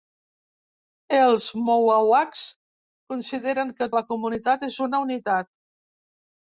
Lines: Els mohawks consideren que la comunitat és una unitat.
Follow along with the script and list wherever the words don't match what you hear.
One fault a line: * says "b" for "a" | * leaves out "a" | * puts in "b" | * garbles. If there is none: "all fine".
all fine